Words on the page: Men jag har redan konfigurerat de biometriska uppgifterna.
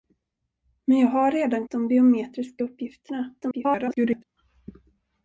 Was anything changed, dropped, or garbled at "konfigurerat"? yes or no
yes